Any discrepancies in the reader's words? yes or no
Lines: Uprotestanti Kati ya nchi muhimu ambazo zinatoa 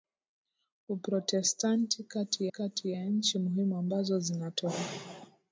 yes